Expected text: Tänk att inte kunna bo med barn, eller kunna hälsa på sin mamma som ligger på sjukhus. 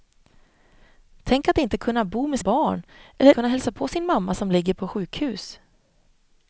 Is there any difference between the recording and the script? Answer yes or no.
no